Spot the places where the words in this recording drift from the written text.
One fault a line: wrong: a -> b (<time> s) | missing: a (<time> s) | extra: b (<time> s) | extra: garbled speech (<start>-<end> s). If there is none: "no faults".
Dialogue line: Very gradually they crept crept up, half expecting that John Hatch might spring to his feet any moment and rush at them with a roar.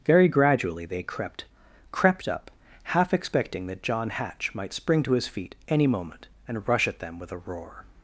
no faults